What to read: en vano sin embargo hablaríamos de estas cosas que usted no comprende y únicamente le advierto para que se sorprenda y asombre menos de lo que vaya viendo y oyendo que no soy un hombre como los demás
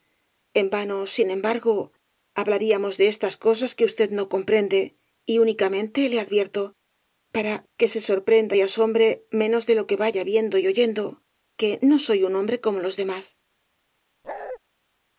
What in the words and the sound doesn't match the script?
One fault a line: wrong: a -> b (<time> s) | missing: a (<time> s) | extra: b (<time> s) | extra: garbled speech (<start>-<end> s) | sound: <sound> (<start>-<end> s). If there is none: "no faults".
sound: bark (14.2-14.6 s)